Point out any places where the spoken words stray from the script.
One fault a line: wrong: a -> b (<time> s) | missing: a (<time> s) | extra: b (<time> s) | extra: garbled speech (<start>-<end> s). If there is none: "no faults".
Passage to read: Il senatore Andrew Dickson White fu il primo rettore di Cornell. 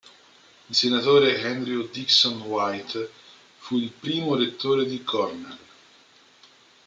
no faults